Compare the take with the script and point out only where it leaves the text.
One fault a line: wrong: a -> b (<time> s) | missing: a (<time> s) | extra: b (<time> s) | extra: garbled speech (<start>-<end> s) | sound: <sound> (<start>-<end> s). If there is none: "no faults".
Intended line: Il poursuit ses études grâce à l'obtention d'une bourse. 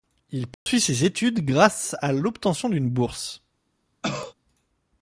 sound: dropout (0.5-0.7 s)
sound: cough (4.0-4.3 s)